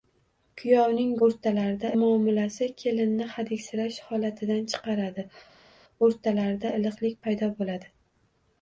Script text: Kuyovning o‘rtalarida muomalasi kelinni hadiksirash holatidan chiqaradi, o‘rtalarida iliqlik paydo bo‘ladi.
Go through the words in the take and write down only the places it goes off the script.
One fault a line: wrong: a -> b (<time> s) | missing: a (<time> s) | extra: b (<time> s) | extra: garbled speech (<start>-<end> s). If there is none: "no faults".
no faults